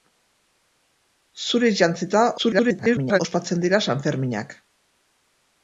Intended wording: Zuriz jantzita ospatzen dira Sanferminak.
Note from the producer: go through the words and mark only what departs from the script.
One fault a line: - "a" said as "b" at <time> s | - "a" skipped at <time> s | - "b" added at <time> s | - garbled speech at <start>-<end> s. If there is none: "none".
- garbled speech at 2.4-3.2 s